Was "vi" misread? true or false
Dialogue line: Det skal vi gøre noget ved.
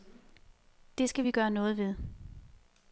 false